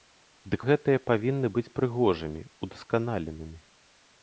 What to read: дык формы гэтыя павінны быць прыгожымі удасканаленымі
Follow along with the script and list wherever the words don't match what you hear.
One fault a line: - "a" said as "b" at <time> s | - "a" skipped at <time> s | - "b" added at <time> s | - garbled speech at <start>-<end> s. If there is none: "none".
- "формы" skipped at 0.6 s